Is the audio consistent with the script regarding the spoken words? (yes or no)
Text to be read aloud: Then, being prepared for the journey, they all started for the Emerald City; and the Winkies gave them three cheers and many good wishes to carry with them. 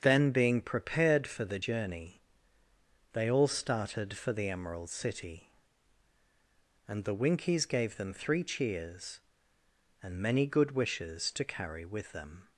yes